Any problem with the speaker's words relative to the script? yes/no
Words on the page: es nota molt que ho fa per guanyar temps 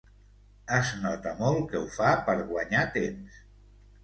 no